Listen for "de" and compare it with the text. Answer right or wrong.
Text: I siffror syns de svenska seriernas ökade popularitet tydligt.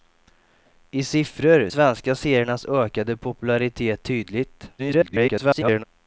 wrong